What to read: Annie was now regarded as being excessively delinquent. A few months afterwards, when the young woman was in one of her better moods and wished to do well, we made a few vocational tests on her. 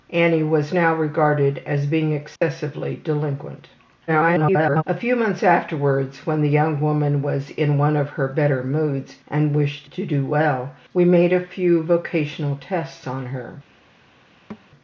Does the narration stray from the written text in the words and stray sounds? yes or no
yes